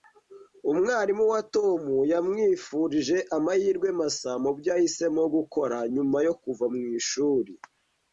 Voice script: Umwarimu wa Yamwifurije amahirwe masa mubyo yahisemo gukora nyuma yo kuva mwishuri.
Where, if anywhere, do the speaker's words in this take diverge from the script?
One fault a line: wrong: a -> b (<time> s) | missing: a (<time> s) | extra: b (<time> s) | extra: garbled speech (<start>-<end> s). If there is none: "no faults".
extra: Tom (1.6 s)